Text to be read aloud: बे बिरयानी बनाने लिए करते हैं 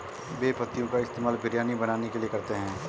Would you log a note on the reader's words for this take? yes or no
yes